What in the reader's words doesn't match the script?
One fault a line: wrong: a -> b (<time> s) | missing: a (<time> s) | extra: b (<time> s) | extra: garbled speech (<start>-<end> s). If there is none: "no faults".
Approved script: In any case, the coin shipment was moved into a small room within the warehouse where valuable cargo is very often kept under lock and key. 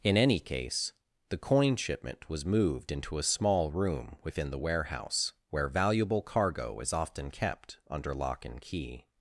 missing: very (6.9 s)